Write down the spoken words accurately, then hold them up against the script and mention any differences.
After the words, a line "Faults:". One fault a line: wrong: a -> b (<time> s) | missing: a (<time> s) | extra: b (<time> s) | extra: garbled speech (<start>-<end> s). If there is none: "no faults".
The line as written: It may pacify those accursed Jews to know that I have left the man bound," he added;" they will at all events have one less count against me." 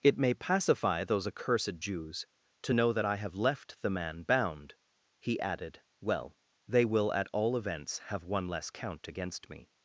It may pacify those accursed Jews to know that I have left the man bound," he added;" well they will at all events have one less count against me."
Faults:
extra: well (6.0 s)